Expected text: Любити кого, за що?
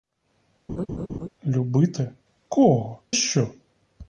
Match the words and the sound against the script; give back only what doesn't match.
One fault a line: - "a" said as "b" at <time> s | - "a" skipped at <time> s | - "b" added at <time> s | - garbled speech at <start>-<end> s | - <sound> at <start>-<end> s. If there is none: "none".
- laugh at 0.7-1.3 s
- "за" skipped at 3.0 s